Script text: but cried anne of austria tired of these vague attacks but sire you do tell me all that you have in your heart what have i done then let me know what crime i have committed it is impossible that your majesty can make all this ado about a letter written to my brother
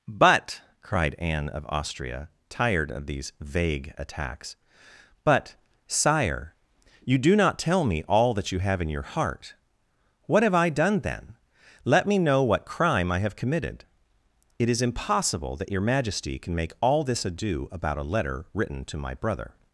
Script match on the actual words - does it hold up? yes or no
no